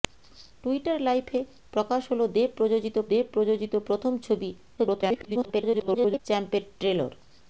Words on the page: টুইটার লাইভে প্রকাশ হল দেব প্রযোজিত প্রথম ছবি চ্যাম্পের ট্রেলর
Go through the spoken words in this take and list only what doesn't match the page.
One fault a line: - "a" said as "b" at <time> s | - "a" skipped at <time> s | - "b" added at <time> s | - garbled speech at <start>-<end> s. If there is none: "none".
- "দেব প্রযোজিত" added at 3.1 s
- garbled speech at 4.8-6.2 s